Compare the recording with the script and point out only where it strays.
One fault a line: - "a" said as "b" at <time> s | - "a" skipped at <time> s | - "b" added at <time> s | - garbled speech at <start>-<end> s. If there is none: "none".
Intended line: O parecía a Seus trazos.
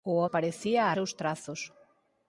none